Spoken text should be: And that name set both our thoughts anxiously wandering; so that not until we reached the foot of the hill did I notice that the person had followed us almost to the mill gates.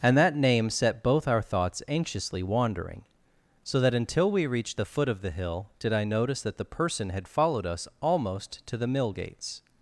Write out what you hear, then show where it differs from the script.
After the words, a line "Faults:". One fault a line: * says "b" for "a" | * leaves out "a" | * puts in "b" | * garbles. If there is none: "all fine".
And that name set both our thoughts anxiously wandering; so that until we reached the foot of the hill did I notice that the person had followed us almost to the mill gates.
Faults:
* leaves out "not"